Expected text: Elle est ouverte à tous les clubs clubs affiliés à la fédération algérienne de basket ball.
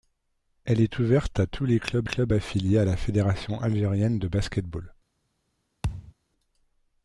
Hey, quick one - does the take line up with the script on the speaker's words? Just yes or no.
yes